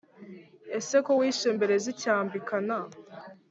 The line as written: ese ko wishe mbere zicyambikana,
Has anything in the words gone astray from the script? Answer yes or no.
no